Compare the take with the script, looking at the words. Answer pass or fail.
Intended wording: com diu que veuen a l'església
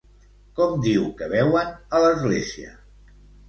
pass